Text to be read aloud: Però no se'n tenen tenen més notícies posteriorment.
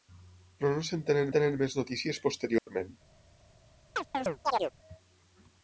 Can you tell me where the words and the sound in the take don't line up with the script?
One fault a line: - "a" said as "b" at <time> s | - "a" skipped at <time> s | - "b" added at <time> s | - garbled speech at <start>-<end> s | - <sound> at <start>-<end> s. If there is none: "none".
- dropout at 2.6-2.7 s
- chirp at 4.0-4.7 s